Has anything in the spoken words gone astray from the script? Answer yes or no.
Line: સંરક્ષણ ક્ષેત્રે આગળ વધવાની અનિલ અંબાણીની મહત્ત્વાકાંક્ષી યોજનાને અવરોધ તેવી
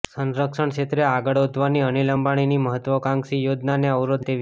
no